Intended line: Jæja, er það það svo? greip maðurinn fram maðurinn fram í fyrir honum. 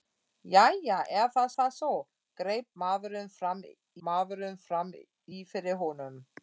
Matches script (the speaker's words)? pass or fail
pass